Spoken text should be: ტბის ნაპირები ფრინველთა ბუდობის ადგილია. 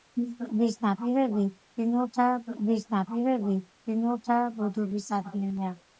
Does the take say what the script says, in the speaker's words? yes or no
no